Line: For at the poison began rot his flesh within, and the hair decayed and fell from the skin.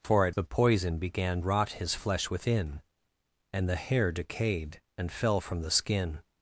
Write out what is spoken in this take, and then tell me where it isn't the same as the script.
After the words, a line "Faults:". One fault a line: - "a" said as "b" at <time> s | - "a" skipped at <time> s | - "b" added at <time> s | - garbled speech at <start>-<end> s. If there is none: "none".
For at the poison began rot his flesh within, and the hair decayed and fell from the skin.
Faults:
none